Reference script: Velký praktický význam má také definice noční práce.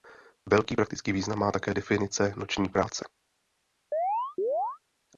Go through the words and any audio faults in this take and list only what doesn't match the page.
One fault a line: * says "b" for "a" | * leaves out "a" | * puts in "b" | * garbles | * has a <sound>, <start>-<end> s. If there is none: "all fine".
* has a chirp, 3.9-4.8 s